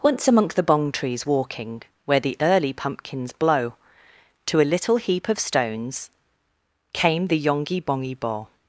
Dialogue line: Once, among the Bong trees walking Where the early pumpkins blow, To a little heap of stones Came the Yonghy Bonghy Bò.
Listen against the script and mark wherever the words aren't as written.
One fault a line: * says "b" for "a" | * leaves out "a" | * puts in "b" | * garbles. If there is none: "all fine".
all fine